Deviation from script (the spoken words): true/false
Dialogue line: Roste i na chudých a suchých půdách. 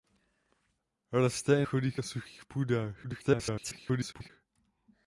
true